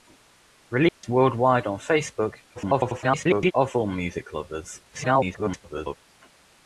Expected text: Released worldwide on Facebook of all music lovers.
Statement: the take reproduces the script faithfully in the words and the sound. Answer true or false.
false